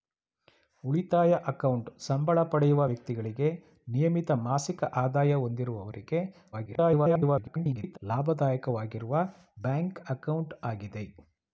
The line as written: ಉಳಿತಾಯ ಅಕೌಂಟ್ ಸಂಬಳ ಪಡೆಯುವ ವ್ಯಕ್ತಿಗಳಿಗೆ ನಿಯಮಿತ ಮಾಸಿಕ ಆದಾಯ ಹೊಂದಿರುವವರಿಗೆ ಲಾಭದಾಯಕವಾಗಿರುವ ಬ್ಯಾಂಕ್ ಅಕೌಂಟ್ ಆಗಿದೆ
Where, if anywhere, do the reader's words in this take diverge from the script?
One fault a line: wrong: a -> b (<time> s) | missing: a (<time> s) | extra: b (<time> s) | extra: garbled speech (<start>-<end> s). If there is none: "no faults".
extra: garbled speech (6.5-8.0 s)